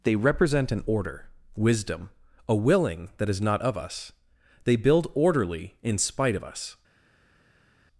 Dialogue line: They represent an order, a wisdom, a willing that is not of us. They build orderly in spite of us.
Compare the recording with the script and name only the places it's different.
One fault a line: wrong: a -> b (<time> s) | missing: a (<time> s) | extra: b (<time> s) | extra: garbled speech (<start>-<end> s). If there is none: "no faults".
missing: a (1.3 s)